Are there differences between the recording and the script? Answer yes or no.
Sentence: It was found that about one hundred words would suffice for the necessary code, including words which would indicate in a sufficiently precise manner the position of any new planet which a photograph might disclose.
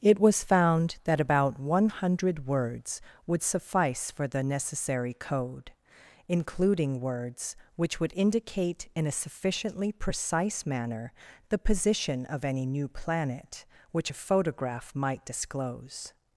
no